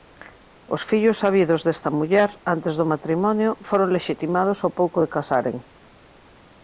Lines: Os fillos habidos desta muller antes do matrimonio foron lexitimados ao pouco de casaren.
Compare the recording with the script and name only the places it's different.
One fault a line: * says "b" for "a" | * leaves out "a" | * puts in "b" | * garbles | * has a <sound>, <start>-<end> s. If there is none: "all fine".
all fine